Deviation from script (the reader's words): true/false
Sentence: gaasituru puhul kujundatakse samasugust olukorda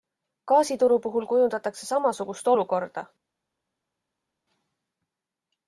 false